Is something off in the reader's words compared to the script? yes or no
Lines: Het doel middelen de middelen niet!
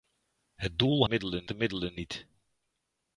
no